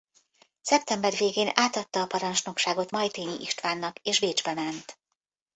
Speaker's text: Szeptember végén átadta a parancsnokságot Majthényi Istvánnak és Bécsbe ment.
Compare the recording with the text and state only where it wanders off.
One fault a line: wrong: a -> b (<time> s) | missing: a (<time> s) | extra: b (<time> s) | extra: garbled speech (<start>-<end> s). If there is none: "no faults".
no faults